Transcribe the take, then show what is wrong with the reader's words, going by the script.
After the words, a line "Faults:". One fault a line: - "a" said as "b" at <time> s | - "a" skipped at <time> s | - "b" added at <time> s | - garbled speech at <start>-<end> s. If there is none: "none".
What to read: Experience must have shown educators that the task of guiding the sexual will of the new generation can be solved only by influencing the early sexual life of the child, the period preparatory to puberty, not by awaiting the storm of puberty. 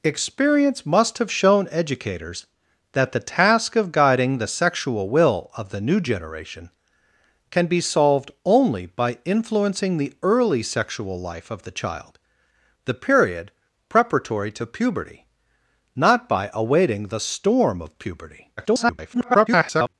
Experience must have shown educators that the task of guiding the sexual will of the new generation can be solved only by influencing the early sexual life of the child, the period preparatory to puberty, not by awaiting the storm of puberty. [garbled]
Faults:
- garbled speech at 18.6-19.9 s